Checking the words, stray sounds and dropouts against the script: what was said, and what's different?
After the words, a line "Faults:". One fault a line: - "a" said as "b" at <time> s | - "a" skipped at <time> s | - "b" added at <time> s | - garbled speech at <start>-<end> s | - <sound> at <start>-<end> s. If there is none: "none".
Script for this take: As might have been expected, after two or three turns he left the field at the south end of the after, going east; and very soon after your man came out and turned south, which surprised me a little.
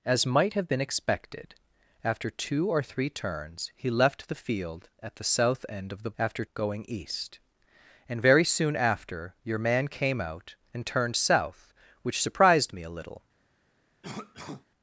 As might have been expected, after two or three turns he left the field at the south end of the after, going east; and very soon after your man came out and turned south, which surprised me a little.
Faults:
- cough at 14.0-14.7 s